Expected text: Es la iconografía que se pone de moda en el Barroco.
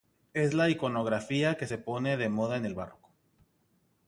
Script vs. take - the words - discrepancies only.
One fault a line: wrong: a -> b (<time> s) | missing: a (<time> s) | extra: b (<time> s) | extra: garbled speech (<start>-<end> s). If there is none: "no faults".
no faults